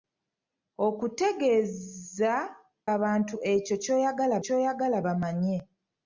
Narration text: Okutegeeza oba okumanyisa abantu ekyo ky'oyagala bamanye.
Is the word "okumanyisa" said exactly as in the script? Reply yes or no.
no